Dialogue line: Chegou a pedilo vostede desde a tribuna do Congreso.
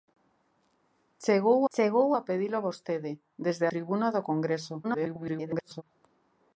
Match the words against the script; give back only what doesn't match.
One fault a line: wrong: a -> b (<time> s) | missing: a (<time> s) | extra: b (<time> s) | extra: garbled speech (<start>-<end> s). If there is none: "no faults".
extra: chegou (1.7 s)
missing: a (3.7 s)
extra: garbled speech (4.8-5.8 s)